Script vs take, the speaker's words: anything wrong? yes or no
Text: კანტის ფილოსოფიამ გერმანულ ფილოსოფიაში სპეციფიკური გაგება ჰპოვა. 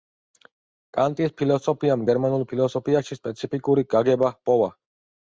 no